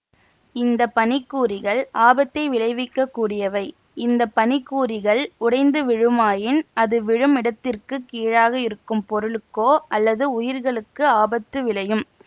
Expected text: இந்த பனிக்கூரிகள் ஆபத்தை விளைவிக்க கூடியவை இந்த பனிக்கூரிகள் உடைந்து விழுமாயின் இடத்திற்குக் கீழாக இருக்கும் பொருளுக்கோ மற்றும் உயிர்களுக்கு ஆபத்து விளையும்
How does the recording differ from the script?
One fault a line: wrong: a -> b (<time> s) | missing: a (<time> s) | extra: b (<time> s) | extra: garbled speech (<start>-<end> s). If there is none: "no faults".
extra: அது விழும் (6.8 s)
wrong: மற்றும் -> அல்லது (10.0 s)